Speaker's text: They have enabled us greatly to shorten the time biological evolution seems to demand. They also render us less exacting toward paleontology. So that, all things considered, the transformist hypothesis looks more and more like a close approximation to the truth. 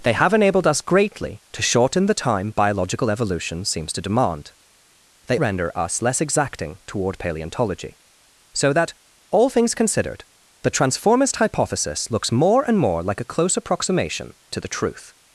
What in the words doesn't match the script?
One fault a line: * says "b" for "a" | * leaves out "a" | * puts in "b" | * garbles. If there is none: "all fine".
* leaves out "also"